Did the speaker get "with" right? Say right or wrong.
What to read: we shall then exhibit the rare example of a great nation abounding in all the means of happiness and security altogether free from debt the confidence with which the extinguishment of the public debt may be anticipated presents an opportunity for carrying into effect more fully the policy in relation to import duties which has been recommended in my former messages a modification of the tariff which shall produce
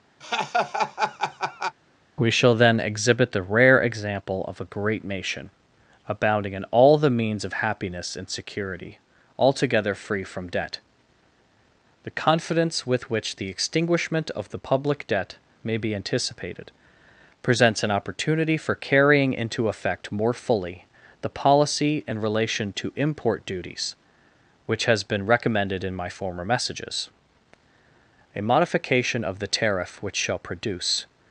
right